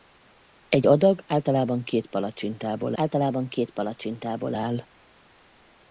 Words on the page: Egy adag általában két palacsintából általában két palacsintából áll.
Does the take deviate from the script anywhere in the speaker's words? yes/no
no